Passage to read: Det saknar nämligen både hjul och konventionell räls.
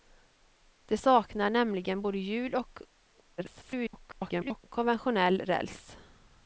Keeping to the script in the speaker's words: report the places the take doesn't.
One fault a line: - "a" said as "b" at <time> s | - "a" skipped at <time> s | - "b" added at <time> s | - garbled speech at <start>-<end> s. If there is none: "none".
- garbled speech at 3.4-4.6 s